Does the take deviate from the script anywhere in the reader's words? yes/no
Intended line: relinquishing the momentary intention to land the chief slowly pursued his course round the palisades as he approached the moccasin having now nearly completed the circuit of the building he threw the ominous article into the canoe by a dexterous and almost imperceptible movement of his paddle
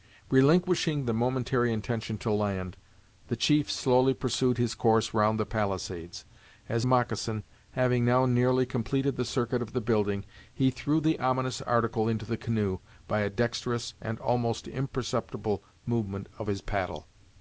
yes